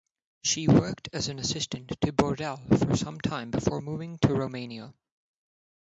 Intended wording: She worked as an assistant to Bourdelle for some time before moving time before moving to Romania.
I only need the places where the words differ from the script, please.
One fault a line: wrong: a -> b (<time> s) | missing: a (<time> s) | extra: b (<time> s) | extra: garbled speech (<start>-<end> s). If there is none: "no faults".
missing: time before moving (4.2 s)